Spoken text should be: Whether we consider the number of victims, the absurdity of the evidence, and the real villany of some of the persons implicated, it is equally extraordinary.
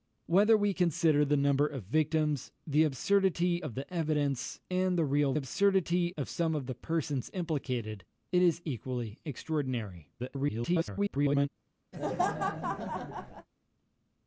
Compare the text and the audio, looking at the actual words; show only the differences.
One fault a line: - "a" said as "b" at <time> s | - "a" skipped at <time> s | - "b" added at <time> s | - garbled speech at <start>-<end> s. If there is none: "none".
- "villany" said as "absurdity" at 5.3 s
- garbled speech at 10.2-11.5 s